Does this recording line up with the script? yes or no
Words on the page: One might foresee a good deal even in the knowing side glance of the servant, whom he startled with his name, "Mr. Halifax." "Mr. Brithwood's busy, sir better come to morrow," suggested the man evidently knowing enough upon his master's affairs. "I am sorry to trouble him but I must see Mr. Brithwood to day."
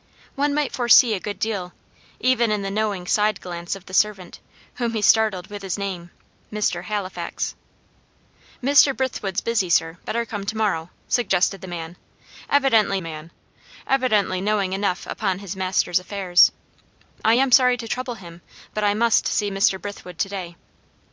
no